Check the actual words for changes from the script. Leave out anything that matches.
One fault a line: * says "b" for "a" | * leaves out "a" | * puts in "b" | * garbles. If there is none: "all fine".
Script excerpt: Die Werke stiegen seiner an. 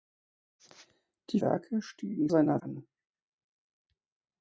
all fine